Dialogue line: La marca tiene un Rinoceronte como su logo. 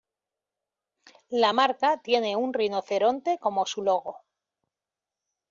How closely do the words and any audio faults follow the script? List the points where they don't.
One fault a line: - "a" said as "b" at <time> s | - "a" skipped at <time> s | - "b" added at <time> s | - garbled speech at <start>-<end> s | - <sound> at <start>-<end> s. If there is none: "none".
none